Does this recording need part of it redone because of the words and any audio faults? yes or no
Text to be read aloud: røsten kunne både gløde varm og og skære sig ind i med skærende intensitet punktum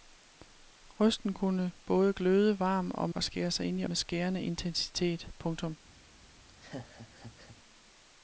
yes